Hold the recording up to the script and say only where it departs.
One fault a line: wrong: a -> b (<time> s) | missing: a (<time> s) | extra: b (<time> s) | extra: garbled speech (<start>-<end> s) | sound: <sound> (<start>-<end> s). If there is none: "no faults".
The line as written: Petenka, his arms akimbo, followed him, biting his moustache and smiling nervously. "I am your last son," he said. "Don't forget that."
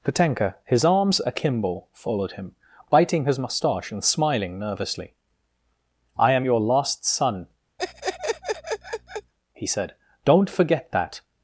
sound: laugh (7.8-9.3 s)